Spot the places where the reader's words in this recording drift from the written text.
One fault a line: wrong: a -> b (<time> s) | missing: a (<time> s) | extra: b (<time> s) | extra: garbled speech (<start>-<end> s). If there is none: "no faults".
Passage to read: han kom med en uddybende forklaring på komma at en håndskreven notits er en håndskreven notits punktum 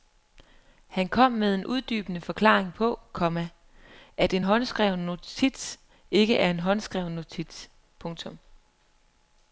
extra: ikke (6.1 s)